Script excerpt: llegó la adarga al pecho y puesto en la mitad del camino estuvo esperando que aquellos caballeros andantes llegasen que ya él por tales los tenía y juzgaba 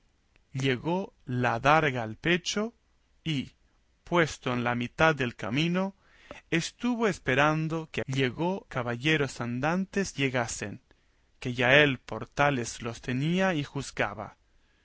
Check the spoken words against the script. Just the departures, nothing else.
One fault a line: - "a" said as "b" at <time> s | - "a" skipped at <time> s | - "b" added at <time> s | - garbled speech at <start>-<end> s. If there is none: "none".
- "aquellos" said as "llegó" at 8.1 s